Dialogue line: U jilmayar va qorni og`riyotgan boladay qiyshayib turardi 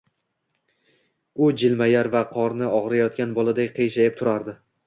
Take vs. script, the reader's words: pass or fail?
pass